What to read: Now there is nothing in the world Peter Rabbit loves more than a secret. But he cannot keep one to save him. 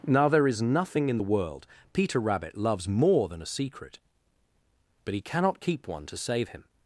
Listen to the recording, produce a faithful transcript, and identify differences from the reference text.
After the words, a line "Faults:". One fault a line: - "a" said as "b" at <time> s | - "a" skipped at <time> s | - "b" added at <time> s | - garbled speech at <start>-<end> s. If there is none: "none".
Now there is nothing in the world Peter Rabbit loves more than a secret. But he cannot keep one to save him.
Faults:
none